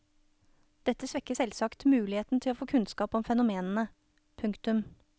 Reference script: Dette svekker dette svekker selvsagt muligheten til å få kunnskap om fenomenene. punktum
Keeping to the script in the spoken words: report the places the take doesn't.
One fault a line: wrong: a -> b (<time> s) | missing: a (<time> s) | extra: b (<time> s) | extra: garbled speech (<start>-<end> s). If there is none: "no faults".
missing: dette svekker (1.3 s)